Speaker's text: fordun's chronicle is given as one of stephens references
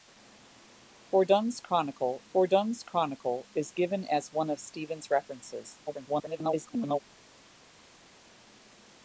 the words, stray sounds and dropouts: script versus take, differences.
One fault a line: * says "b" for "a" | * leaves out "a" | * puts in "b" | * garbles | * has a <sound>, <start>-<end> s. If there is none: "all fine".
* puts in "fordun's chronicle"
* garbles